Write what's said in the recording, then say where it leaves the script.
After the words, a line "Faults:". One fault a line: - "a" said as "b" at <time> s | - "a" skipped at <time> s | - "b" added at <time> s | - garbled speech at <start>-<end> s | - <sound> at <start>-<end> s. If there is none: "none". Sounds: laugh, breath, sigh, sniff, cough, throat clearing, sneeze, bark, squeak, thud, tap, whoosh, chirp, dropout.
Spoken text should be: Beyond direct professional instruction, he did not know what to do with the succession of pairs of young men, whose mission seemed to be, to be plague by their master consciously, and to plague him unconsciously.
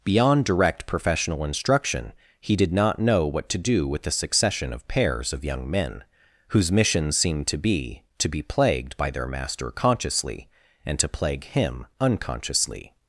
Beyond direct professional instruction, he did not know what to do with the succession of pairs of young men, whose mission seemed to be, to be plagued by their master consciously, and to plague him unconsciously.
Faults:
- "plague" said as "plagued" at 8.4 s